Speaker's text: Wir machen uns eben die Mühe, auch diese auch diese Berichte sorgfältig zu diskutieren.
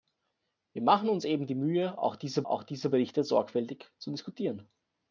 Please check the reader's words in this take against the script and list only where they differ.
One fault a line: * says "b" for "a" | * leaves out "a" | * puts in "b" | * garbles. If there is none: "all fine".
all fine